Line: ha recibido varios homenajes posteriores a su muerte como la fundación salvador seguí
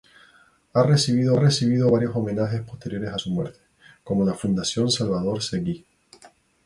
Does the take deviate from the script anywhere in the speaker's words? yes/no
yes